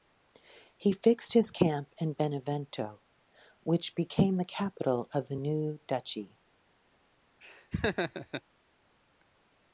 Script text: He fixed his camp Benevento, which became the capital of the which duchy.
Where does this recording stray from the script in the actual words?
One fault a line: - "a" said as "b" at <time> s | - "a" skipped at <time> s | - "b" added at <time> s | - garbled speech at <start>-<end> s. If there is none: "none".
- "in" added at 2.0 s
- "which" said as "new" at 5.3 s